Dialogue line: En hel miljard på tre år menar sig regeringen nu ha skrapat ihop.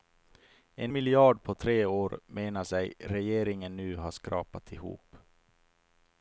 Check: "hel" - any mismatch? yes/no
yes